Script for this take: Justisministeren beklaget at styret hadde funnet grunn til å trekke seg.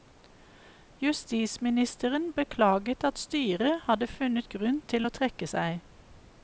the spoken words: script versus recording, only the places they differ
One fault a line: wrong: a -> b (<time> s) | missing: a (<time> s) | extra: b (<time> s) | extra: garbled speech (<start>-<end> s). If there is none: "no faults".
no faults